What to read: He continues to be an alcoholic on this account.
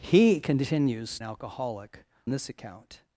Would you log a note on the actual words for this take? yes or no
yes